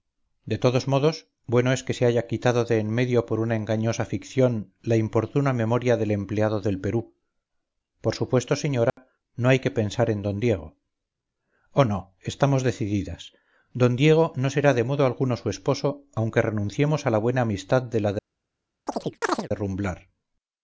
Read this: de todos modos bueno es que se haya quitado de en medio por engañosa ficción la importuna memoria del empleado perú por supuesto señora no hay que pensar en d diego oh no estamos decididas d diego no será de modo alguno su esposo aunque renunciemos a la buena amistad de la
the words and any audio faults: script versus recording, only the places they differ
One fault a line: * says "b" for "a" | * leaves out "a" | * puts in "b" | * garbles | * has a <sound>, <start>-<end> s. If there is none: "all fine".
* puts in "una"
* puts in "del"
* has a dropout, 8.9-9.0 s
* has a chirp, 18.9-19.5 s